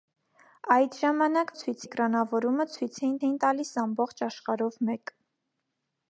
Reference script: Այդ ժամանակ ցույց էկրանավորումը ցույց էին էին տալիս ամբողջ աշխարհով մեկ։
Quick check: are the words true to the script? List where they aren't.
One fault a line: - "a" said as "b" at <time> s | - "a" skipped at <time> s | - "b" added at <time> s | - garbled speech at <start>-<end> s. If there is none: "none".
none